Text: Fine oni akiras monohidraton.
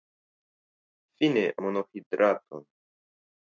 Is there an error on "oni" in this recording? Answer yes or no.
yes